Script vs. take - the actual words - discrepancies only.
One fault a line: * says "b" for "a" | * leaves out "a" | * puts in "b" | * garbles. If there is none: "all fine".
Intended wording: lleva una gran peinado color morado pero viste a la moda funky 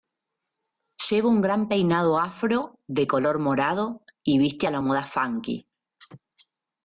* says "un" for "una"
* puts in "afro de"
* says "y" for "pero"